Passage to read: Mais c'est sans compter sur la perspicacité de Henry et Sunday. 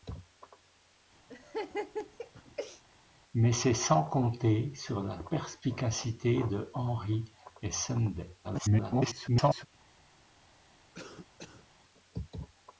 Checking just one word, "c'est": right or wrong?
right